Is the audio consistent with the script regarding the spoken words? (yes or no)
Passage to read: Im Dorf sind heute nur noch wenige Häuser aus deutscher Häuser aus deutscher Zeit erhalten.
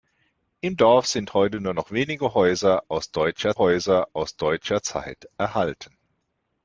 yes